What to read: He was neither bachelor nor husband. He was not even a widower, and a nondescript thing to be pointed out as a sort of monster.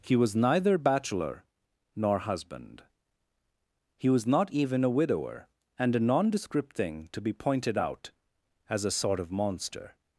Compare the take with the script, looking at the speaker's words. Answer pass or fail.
pass